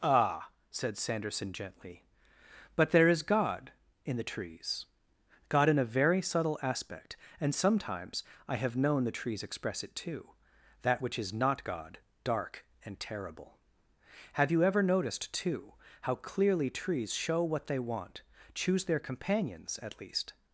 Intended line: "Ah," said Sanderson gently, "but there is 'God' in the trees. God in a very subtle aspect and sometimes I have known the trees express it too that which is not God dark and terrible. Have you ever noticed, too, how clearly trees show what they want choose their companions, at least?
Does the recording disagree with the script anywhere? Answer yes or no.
no